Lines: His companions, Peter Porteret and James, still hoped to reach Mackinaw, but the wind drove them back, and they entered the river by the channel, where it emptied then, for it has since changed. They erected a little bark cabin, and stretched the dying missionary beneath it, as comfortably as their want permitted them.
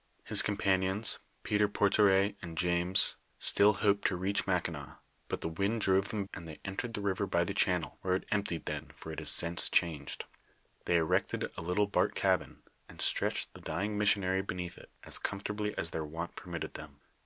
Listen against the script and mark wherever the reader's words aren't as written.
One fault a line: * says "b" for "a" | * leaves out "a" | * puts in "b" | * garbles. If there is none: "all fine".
* leaves out "back"